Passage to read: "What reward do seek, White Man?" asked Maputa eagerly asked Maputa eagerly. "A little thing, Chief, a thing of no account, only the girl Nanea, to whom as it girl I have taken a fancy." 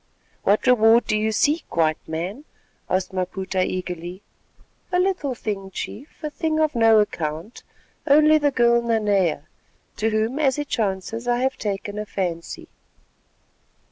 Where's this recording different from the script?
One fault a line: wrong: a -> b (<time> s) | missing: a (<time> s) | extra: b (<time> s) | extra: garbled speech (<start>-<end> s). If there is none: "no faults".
extra: you (1.1 s)
missing: asked Maputa eagerly (4.2 s)
wrong: girl -> chances (10.7 s)